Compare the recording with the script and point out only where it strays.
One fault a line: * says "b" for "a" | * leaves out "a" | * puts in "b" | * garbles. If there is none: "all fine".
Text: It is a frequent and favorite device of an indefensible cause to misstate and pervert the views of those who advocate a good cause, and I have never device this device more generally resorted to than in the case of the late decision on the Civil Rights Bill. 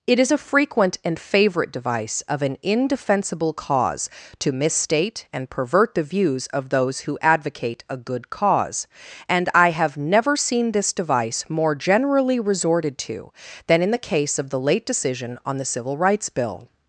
* says "seen" for "device"